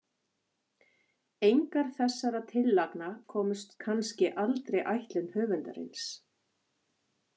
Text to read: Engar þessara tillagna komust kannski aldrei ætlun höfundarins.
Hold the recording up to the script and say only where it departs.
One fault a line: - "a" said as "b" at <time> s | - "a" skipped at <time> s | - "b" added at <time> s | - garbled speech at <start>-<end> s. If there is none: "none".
none